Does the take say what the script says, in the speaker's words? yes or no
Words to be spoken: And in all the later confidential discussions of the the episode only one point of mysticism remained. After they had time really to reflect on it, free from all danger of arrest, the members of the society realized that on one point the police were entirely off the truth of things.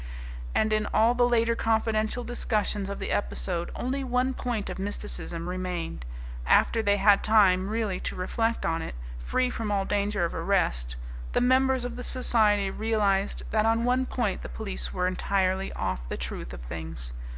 no